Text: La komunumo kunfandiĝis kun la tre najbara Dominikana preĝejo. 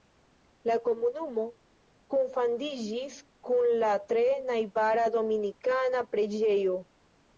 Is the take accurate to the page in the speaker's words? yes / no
yes